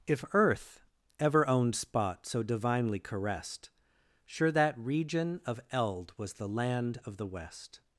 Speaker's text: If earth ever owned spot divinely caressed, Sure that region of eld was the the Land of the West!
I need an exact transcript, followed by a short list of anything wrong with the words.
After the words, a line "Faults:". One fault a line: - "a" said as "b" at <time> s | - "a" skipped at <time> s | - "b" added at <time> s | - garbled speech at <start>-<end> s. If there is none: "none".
If earth ever owned spot so divinely caressed, Sure that region of eld was the Land of the West!
Faults:
- "so" added at 2.2 s
- "the" skipped at 6.5 s